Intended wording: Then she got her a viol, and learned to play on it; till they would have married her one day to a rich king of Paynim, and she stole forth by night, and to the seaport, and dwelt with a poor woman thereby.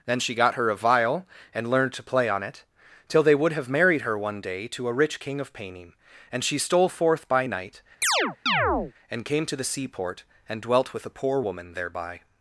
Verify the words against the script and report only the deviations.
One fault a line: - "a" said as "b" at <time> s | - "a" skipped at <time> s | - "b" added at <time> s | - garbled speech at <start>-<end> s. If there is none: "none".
- "came" added at 9.2 s